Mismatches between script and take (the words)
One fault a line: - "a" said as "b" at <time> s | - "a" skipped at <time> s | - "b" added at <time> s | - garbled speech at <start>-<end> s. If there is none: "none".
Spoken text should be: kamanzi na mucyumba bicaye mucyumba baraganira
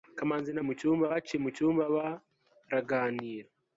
none